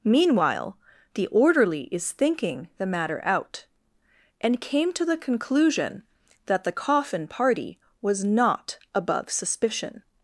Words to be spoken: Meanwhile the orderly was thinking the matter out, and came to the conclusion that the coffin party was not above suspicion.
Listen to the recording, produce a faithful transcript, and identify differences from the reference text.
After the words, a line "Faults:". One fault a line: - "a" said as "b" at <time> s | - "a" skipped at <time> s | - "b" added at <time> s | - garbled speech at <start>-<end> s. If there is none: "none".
Meanwhile the orderly is thinking the matter out, and came to the conclusion that the coffin party was not above suspicion.
Faults:
- "was" said as "is" at 1.9 s